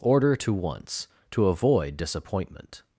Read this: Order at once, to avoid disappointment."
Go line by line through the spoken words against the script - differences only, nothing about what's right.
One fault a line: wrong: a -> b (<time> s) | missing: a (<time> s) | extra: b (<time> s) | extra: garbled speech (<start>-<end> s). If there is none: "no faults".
wrong: at -> to (0.4 s)